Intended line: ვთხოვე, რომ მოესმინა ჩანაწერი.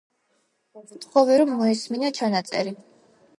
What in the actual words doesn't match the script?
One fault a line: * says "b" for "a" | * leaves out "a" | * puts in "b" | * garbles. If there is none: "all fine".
all fine